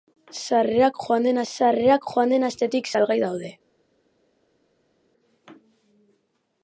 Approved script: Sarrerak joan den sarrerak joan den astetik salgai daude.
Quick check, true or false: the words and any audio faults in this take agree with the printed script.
true